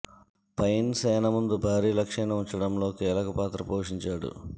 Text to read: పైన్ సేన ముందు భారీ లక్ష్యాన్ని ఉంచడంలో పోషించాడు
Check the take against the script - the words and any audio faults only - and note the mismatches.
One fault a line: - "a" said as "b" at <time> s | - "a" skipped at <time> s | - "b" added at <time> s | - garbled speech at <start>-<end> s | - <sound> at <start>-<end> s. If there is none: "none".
- "కీలక పాత్ర" added at 2.9 s